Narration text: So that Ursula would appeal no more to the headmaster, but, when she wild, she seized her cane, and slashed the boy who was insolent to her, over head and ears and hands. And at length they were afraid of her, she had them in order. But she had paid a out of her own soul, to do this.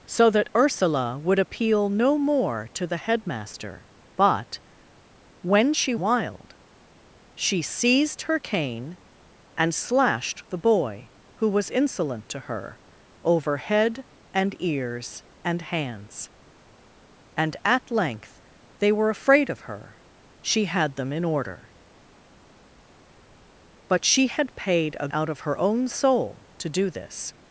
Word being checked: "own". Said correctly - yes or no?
yes